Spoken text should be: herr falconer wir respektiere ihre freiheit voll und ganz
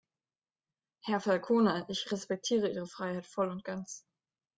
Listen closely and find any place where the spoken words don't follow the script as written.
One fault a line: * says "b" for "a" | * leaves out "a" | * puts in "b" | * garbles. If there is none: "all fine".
* says "ich" for "wir"